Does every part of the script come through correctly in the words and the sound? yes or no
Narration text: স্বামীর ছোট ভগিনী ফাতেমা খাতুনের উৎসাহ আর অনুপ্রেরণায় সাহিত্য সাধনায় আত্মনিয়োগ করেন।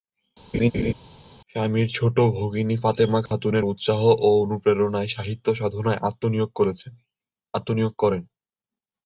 no